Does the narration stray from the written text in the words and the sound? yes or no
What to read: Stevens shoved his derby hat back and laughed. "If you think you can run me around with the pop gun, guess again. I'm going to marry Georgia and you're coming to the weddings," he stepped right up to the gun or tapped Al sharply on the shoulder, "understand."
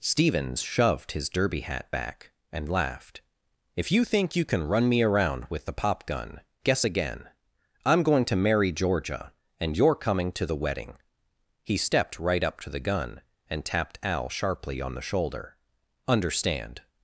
yes